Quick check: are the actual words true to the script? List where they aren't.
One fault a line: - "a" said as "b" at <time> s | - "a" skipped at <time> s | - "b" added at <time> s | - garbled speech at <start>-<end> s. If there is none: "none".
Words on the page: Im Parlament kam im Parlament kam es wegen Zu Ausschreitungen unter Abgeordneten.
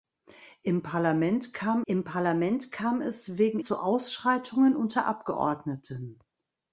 none